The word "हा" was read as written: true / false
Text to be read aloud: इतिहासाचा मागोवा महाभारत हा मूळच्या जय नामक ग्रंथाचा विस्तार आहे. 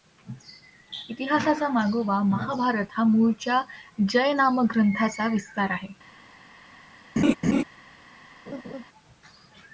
true